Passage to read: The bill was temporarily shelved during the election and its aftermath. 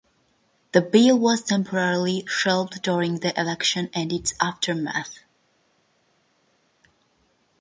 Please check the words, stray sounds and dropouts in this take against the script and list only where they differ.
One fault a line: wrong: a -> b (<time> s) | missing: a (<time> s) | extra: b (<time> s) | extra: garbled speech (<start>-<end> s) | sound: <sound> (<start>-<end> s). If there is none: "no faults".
no faults